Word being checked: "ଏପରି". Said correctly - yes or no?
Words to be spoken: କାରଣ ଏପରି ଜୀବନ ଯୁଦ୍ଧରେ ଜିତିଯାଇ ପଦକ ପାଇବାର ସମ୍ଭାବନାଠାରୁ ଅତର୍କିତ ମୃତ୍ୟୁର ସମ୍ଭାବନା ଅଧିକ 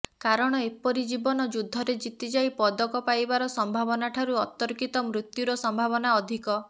yes